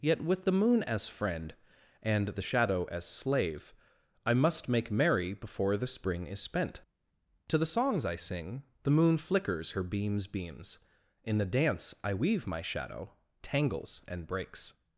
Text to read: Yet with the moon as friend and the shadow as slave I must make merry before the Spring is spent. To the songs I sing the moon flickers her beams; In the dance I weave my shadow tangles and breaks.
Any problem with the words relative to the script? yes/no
yes